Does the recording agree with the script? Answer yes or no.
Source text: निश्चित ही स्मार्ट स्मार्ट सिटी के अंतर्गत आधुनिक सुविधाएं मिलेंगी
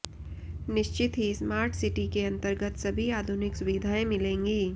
no